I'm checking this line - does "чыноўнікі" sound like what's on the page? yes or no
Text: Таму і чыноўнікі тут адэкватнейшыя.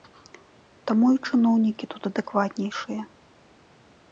yes